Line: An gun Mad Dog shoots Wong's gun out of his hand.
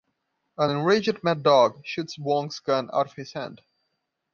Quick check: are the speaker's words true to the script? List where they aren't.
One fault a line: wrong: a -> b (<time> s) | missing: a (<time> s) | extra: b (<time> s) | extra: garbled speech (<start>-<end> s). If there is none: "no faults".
wrong: gun -> enraged (0.7 s)